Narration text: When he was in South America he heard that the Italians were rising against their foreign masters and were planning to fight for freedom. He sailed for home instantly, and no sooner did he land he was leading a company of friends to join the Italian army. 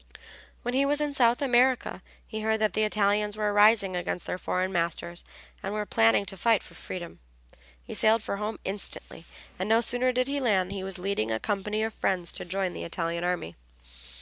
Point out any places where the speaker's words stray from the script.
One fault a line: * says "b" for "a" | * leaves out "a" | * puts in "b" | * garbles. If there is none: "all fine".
all fine